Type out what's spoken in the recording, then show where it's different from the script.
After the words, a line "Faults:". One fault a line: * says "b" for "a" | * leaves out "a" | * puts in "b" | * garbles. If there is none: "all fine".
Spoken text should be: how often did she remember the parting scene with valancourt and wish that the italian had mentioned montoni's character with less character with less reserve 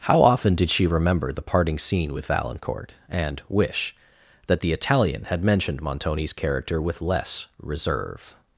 how often did she remember the parting scene with valancourt and wish that the italian had mentioned montoni's character with less reserve
Faults:
* leaves out "character with less"